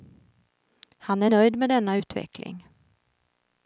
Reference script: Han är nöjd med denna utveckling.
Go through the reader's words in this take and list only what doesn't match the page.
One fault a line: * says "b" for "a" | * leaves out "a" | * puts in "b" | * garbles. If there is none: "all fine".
all fine